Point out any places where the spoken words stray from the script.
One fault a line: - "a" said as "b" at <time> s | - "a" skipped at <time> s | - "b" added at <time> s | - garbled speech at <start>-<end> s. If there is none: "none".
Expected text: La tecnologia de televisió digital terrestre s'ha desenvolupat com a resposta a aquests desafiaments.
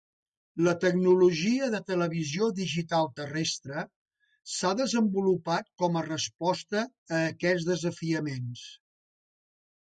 none